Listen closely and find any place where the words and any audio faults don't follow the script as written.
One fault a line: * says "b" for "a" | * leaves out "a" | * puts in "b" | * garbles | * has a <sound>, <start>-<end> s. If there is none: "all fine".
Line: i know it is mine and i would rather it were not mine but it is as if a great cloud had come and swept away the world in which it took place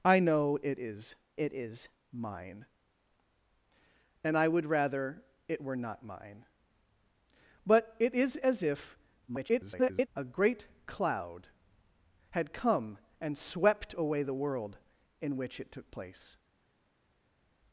* puts in "it is"
* garbles